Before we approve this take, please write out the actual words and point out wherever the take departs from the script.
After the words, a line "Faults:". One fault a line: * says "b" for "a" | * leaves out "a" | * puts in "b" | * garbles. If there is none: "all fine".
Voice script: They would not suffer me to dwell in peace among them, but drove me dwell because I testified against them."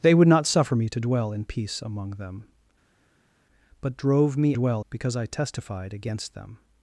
They would not suffer me to dwell in peace among them, but drove me dwell because I testified against them."
Faults:
all fine